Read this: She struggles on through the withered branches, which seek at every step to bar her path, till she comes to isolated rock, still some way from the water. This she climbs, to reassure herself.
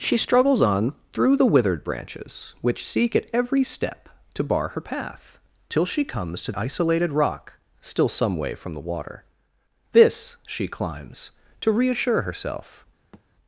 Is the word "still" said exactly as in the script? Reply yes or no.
yes